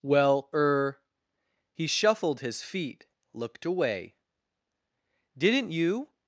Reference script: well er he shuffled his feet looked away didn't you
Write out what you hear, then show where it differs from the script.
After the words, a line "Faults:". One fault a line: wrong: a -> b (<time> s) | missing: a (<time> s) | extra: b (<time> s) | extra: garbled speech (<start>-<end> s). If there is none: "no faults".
well er he shuffled his feet looked away didn't you
Faults:
no faults